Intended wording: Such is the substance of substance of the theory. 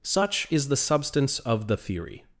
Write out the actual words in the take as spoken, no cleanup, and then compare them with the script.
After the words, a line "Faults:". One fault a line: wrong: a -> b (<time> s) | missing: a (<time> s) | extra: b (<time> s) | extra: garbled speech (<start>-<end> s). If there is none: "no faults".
Such is the substance of the theory.
Faults:
missing: substance of (1.7 s)